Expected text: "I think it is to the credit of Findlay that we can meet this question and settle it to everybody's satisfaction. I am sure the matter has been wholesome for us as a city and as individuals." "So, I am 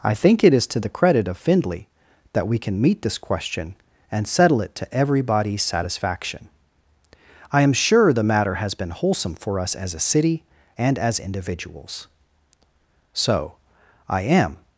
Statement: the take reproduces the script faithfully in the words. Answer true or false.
true